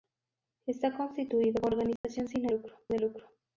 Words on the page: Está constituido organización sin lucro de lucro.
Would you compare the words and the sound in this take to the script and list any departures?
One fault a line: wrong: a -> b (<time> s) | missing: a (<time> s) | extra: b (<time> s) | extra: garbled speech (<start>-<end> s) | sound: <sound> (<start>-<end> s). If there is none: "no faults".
sound: dropout (2.0-2.0 s)